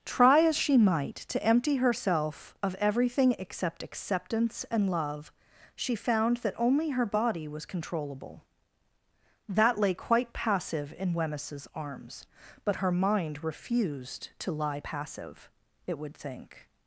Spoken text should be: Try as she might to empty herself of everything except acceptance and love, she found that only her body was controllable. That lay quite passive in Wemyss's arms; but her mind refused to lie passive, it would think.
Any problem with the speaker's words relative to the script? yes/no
no